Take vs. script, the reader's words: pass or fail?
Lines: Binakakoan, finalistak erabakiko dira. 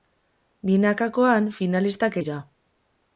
fail